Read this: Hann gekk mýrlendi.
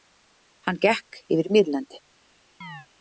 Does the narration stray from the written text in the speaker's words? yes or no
yes